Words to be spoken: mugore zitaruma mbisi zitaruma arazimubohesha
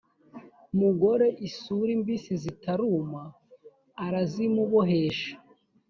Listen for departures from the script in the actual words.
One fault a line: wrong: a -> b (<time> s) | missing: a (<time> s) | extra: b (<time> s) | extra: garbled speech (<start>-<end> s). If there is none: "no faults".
wrong: zitaruma -> isuri (1.5 s)